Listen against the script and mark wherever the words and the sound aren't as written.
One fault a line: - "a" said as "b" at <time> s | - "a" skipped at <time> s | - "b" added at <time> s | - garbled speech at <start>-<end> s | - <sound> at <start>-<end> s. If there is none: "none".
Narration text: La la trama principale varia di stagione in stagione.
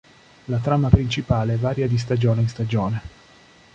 - "la" skipped at 0.6 s